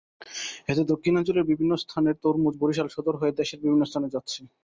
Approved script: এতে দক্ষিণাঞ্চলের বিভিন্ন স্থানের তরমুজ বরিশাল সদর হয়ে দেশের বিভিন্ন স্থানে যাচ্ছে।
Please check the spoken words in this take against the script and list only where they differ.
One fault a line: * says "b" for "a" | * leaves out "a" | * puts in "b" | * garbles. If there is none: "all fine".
all fine